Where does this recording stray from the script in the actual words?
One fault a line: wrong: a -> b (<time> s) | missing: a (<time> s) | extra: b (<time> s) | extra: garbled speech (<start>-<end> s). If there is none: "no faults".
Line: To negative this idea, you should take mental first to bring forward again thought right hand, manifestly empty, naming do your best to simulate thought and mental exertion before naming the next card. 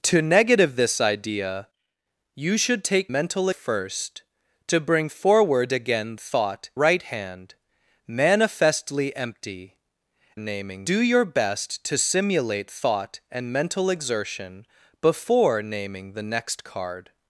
no faults